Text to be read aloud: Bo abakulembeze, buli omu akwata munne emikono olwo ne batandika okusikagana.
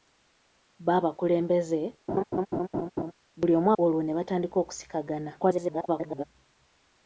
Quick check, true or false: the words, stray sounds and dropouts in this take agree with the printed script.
false